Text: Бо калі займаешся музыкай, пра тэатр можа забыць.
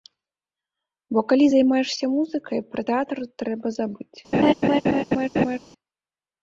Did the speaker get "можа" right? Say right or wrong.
wrong